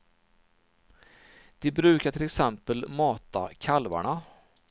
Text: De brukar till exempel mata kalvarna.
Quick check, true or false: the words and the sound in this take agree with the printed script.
true